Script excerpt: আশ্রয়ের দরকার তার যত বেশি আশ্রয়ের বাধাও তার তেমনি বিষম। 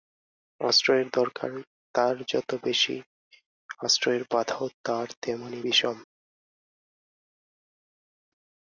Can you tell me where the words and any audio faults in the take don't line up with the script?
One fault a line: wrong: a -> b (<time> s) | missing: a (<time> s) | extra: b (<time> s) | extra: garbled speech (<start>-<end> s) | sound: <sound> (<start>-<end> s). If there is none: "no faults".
no faults